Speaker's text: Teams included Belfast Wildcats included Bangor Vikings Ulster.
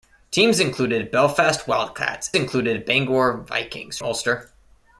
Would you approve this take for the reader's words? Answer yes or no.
yes